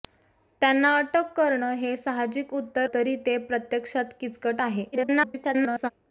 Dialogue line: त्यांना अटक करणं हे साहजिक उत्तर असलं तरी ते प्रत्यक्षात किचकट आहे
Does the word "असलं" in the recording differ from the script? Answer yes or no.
yes